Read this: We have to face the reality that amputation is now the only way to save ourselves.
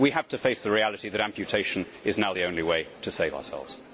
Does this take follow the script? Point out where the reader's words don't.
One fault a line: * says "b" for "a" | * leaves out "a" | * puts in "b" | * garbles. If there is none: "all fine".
all fine